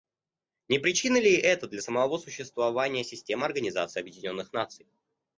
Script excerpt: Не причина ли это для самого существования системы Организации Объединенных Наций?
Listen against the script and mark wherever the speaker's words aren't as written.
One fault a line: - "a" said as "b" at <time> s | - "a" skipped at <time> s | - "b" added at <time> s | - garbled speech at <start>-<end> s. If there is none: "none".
none